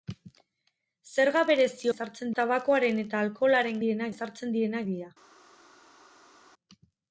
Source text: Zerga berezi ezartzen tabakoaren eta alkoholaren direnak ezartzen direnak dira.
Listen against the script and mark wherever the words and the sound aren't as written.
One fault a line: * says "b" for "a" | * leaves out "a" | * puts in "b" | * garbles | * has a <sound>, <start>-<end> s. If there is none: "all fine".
all fine